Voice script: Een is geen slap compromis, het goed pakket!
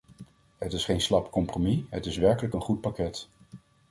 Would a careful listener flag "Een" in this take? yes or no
yes